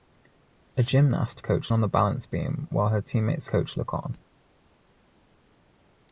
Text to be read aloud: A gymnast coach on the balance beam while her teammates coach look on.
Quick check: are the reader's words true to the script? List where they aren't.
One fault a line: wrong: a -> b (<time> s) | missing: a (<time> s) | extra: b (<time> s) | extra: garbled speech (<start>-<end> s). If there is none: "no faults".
no faults